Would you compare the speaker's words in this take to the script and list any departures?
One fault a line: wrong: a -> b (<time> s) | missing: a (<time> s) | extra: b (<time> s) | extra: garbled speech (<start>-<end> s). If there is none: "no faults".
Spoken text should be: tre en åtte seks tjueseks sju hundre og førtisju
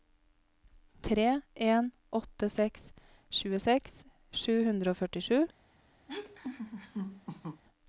no faults